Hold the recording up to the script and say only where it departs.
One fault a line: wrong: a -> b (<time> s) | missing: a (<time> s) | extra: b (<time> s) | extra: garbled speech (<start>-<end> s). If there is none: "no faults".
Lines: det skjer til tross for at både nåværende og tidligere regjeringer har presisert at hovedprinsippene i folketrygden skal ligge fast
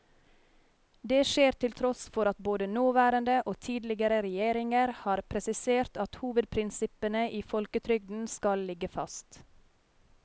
no faults